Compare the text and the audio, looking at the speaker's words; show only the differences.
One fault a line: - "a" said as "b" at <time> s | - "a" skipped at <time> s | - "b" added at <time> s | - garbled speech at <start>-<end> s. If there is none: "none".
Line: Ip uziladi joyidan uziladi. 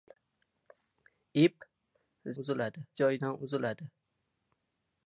none